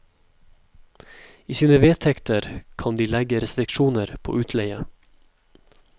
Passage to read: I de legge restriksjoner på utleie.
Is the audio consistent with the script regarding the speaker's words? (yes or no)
no